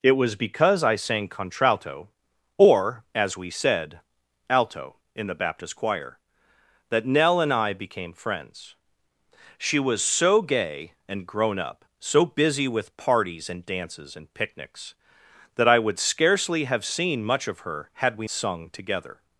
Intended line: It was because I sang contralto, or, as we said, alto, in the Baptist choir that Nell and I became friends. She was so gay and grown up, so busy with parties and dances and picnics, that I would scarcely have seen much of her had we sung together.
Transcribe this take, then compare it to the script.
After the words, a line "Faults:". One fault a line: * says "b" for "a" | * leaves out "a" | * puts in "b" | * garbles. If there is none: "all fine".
It was because I sang contralto, or, as we said, alto, in the Baptist choir that Nell and I became friends. She was so gay and grown up, so busy with parties and dances and picnics, that I would scarcely have seen much of her had we sung together.
Faults:
all fine